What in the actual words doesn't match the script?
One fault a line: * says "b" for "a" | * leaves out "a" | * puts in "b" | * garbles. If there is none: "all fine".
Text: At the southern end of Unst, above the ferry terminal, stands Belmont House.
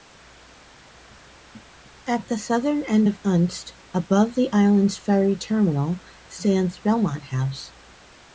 * puts in "island's"